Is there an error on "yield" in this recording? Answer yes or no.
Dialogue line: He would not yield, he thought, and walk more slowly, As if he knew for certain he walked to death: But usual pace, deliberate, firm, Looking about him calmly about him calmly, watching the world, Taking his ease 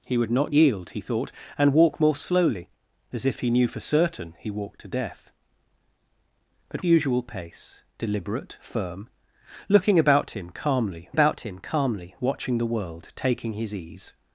no